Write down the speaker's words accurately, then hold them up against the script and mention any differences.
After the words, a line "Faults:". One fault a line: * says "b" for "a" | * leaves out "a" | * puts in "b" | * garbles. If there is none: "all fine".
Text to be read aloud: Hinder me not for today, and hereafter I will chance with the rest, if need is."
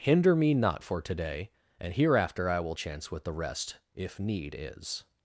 Hinder me not for today, and hereafter I will chance with the rest, if need is."
Faults:
all fine